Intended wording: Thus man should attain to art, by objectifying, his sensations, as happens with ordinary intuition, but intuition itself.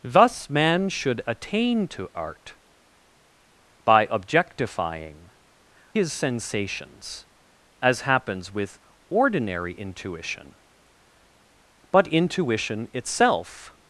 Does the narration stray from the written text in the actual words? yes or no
no